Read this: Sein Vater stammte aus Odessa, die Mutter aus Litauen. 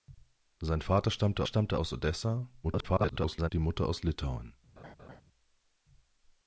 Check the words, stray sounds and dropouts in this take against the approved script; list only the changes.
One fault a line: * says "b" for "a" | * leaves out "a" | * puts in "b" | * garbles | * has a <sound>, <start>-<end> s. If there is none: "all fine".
* puts in "stammte"
* garbles
* has a laugh, 4.8-5.2 s